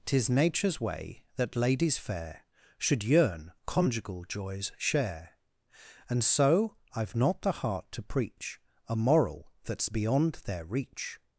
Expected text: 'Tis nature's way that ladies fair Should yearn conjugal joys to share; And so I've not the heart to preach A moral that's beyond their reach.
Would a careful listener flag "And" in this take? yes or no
no